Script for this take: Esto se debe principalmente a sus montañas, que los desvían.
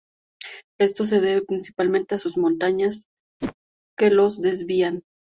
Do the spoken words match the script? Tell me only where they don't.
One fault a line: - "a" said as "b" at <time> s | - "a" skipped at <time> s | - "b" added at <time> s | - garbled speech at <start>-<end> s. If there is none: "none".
none